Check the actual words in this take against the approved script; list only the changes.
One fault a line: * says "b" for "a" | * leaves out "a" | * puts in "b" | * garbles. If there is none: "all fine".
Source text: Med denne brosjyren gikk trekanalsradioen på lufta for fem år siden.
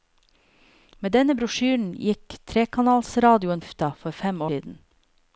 * leaves out "på"
* leaves out "år"